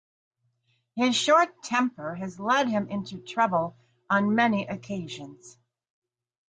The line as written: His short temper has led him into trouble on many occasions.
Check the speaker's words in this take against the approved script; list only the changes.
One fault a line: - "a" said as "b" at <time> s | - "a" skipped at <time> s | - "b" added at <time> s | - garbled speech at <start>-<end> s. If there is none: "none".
none